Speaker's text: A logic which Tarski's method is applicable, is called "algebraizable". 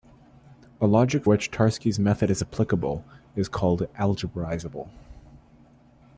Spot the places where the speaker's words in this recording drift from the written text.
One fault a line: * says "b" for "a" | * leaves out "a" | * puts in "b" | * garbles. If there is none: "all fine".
all fine